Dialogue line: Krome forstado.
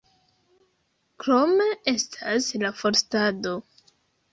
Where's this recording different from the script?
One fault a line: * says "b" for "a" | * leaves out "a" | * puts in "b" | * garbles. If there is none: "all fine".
* puts in "estas la"